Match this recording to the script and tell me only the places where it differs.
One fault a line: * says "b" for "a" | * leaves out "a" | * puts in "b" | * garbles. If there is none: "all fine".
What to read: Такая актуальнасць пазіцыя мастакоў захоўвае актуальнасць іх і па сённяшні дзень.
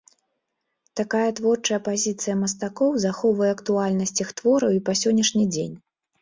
* says "творчая" for "актуальнасць"
* puts in "твораў"